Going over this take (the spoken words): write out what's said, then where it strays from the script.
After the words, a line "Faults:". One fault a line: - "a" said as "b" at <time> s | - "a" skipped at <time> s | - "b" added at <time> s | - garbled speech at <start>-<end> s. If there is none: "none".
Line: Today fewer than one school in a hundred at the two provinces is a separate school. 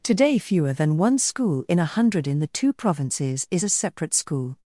Today fewer than one school in a hundred in the two provinces is a separate school.
Faults:
- "at" said as "in" at 2.2 s